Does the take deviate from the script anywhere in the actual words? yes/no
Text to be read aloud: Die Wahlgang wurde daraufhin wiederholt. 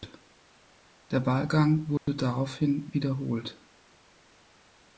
yes